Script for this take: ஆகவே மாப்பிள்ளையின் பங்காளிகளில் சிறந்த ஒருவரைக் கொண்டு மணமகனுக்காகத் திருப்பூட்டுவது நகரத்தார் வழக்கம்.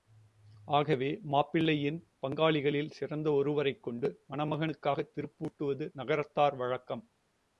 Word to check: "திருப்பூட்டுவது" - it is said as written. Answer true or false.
true